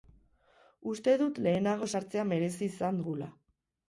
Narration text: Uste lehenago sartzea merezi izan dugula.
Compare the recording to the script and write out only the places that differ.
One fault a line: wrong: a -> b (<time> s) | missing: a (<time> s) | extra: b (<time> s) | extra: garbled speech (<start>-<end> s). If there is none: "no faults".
extra: dut (1.2 s)